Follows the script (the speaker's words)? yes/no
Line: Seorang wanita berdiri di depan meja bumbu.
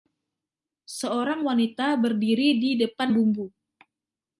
no